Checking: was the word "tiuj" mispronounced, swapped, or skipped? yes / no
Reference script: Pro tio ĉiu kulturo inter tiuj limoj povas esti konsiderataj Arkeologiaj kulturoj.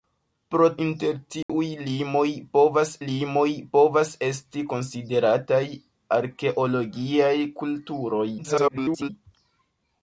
yes